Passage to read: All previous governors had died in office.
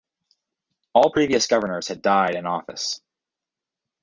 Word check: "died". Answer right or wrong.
right